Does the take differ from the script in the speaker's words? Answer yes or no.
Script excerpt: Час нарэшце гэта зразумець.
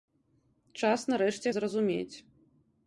yes